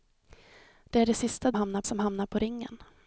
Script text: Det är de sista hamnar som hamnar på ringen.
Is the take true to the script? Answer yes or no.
yes